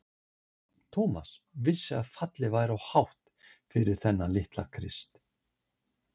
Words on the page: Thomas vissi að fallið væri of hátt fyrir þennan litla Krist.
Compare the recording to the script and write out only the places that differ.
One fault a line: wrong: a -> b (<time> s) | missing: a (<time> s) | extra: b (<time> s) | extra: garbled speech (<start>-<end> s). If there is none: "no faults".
no faults